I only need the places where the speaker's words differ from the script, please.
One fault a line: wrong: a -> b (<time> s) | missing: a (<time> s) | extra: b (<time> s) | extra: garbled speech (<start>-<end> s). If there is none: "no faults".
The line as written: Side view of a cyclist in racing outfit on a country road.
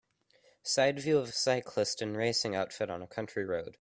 no faults